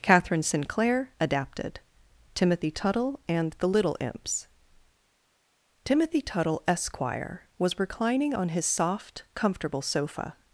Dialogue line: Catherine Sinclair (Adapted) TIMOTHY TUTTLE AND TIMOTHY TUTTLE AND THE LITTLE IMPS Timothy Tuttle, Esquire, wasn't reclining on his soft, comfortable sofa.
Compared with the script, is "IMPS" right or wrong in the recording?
right